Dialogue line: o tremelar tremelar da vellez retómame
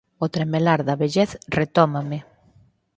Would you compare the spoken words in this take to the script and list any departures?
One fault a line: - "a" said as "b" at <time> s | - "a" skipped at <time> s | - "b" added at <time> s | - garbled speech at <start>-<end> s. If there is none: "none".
- "tremelar" skipped at 0.8 s